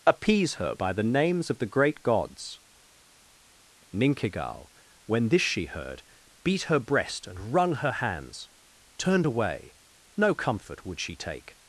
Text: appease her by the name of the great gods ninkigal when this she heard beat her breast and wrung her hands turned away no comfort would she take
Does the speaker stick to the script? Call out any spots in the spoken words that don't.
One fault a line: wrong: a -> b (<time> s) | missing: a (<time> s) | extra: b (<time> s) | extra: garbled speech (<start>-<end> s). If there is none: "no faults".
wrong: name -> names (1.0 s)